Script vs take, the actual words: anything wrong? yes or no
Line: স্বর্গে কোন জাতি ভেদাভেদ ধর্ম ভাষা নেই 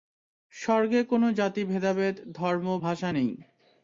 no